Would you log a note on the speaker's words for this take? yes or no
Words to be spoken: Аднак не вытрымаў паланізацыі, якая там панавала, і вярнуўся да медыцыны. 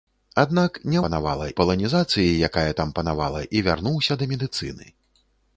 yes